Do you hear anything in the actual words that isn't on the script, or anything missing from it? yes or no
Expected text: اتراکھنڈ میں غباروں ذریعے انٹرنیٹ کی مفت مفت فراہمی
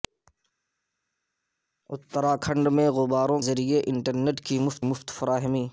no